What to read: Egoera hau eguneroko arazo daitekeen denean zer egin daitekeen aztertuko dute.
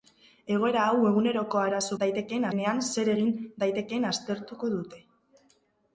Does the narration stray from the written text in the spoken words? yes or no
no